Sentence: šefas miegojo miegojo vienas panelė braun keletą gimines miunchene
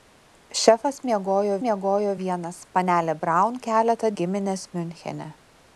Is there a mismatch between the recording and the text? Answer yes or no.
no